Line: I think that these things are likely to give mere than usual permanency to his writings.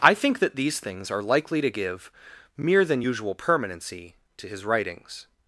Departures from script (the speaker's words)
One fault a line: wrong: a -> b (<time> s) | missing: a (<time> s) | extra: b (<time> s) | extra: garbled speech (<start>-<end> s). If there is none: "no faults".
no faults